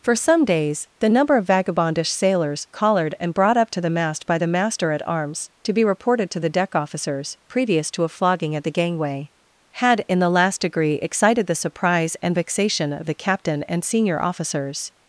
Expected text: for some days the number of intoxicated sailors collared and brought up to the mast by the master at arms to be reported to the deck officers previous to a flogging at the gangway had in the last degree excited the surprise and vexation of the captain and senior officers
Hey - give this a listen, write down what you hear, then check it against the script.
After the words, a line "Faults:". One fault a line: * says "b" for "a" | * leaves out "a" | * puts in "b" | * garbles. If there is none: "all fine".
for some days the number of vagabondish sailors collared and brought up to the mast by the master at arms to be reported to the deck officers previous to a flogging at the gangway had in the last degree excited the surprise and vexation of the captain and senior officers
Faults:
* says "vagabondish" for "intoxicated"